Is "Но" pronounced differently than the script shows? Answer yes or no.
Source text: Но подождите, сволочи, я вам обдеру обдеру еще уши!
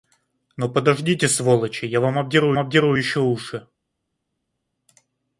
no